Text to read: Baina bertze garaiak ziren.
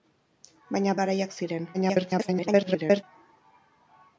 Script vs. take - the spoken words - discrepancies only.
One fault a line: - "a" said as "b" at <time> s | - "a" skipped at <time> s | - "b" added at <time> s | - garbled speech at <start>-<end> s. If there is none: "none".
- "bertze" skipped at 0.9 s
- garbled speech at 1.7-3.0 s